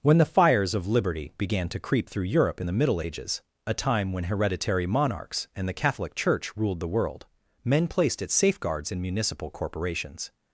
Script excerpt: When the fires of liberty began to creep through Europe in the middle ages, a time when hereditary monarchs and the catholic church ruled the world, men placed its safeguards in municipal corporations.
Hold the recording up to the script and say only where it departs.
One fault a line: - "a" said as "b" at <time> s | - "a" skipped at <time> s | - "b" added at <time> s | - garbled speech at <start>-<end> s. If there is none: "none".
none